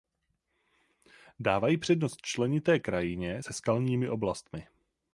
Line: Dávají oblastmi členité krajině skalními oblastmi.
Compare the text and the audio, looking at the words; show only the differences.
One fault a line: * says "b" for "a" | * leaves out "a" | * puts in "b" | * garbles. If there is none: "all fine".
* says "přednost" for "oblastmi"
* puts in "se"